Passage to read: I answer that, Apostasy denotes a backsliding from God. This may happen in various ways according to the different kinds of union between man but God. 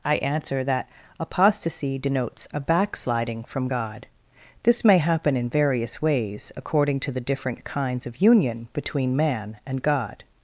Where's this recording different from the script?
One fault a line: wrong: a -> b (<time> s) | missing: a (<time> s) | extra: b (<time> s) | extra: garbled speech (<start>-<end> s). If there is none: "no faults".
wrong: but -> and (9.7 s)